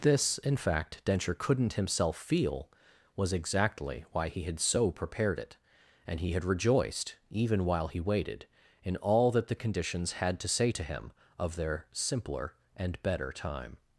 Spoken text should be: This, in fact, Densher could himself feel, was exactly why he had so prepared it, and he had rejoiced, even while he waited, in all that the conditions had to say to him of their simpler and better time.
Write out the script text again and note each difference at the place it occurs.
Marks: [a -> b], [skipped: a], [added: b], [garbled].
This, in fact, Densher [could -> couldn't] himself feel, was exactly why he had so prepared it, and he had rejoiced, even while he waited, in all that the conditions had to say to him of their simpler and better time.